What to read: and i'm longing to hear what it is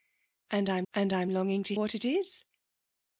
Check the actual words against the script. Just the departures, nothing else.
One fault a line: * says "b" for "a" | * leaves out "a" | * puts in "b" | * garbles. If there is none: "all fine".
* puts in "and i'm"
* leaves out "hear"